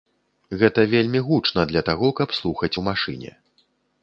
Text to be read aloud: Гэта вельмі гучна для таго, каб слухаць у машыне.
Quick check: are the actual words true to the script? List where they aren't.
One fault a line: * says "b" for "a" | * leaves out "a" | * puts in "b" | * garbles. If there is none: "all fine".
all fine